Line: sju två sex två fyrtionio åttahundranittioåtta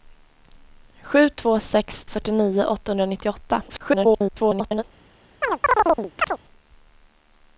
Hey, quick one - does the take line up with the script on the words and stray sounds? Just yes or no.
no